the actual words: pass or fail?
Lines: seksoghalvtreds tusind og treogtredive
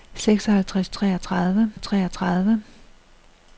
fail